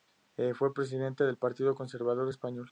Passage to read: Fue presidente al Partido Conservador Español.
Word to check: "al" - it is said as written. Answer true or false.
false